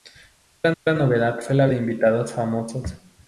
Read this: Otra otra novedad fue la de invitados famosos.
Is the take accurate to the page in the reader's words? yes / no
yes